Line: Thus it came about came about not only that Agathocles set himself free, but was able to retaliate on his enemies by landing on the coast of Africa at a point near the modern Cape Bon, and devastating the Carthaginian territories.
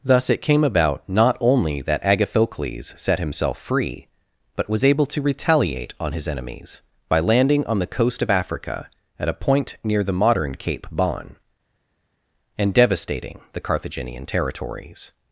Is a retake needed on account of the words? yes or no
yes